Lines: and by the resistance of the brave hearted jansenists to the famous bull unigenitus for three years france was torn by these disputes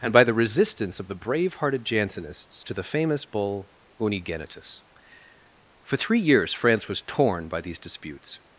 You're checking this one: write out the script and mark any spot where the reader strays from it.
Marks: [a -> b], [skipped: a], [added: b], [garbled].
and by the resistance of the brave hearted jansenists to the famous bull unigenitus for three years france was torn by these disputes